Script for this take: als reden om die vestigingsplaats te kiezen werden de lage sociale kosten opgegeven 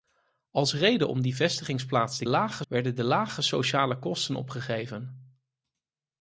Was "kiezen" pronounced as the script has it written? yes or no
no